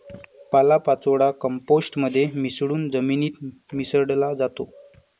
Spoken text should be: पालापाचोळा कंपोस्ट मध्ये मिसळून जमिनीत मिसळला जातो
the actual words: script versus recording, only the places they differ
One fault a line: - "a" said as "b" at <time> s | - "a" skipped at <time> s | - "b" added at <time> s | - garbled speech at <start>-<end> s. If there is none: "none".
none